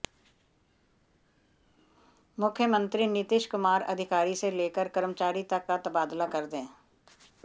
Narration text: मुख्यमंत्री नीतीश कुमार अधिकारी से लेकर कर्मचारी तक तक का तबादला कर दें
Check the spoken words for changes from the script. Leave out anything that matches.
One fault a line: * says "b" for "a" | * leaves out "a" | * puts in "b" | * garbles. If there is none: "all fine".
* leaves out "तक"